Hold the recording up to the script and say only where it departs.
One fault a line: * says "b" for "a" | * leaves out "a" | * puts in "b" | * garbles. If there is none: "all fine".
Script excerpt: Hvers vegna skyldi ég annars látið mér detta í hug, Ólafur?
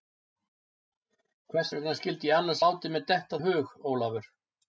all fine